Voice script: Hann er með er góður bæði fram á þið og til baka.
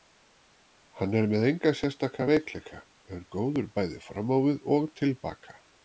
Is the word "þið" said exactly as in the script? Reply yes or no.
no